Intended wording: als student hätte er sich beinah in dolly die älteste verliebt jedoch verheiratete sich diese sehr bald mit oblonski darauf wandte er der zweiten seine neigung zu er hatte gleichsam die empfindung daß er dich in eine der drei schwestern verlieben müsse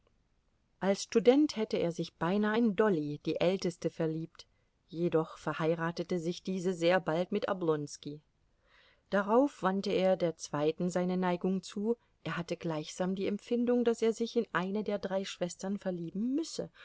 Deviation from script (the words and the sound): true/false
true